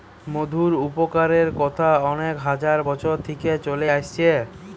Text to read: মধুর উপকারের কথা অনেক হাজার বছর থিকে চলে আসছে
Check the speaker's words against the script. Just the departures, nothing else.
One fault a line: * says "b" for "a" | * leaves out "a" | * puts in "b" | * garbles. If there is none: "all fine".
all fine